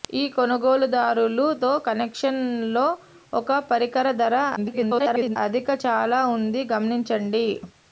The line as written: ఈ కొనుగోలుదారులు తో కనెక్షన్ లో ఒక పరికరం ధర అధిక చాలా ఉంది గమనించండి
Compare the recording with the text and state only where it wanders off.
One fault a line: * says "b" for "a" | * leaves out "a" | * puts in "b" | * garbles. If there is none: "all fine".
* garbles